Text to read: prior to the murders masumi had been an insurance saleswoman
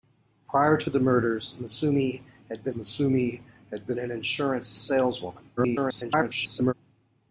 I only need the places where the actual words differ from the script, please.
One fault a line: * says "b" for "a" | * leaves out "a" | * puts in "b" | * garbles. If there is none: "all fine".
* puts in "masumi had been"
* garbles